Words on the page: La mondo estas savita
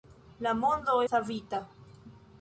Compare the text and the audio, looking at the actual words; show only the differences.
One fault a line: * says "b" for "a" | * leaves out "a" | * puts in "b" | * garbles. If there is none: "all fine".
* leaves out "estas"